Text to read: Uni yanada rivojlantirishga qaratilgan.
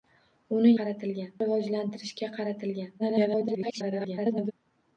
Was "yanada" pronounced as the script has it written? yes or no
no